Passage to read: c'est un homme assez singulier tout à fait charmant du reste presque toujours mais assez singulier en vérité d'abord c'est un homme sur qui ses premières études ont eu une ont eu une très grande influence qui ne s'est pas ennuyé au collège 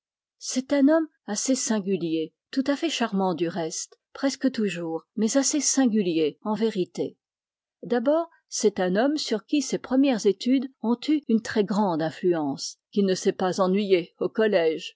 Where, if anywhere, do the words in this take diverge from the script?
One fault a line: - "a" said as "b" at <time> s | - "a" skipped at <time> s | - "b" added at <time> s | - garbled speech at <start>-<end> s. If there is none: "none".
- "ont eu une" skipped at 11.4 s